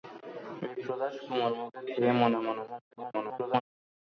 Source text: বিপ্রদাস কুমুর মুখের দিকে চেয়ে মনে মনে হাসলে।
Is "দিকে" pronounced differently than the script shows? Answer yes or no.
yes